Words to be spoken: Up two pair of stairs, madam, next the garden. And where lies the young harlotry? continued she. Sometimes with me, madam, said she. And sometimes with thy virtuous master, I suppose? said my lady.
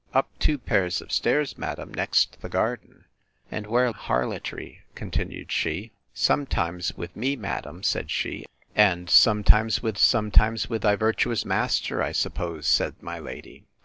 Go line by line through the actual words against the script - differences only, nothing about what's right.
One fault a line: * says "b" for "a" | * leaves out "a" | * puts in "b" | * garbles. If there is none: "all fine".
* leaves out "lies the young"
* puts in "sometimes with"